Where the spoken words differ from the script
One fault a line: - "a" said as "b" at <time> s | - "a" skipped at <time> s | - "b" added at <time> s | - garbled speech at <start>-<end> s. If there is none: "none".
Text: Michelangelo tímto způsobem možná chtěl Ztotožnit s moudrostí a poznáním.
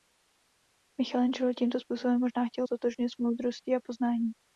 none